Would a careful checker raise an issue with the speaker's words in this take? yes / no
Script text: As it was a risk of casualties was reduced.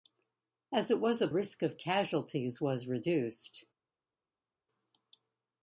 no